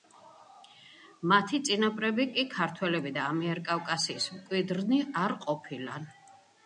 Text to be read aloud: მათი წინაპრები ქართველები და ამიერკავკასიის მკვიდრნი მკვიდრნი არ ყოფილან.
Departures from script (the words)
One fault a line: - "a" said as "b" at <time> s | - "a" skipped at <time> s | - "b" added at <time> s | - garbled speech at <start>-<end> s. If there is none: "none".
- "კი" added at 2.3 s
- "მკვიდრნი" skipped at 5.0 s